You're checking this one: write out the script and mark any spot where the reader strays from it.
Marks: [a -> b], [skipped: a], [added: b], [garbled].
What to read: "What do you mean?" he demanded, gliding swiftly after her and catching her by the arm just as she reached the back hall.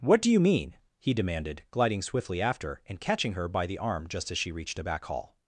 "What do you mean?" he demanded, gliding swiftly after [skipped: her] and catching her by the arm just as she reached [the -> a] back hall.